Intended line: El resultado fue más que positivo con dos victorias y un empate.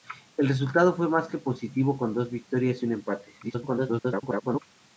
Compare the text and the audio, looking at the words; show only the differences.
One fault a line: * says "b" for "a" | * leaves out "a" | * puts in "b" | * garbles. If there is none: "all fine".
* garbles